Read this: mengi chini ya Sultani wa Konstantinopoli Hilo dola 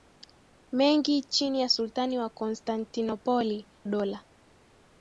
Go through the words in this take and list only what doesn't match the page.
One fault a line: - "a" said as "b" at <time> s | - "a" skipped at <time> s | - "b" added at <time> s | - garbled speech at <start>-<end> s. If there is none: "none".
- "Hilo" skipped at 3.7 s